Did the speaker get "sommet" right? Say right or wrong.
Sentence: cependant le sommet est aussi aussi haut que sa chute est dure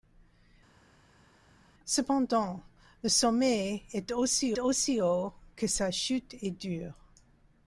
right